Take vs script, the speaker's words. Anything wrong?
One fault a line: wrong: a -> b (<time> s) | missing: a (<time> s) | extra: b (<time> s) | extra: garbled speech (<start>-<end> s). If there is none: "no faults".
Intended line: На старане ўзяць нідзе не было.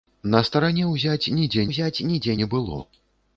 extra: ўзяць нідзе (1.7 s)